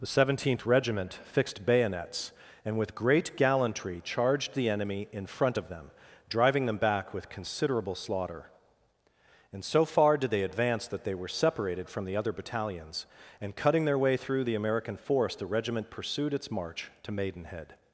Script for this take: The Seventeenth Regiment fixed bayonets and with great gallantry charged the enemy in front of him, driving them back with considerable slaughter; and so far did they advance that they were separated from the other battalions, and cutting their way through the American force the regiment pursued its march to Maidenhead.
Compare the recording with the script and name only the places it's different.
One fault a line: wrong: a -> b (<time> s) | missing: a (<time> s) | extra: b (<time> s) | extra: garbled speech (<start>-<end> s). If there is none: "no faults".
wrong: him -> them (5.7 s)